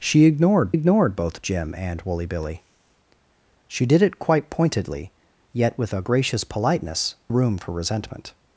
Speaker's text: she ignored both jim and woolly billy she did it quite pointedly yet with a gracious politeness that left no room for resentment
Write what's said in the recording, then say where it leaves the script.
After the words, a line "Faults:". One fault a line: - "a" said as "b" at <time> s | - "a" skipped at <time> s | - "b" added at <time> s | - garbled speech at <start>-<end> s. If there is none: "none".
she ignored ignored both jim and woolly billy she did it quite pointedly yet with a gracious politeness room for resentment
Faults:
- "ignored" added at 0.7 s
- "that left no" skipped at 7.1 s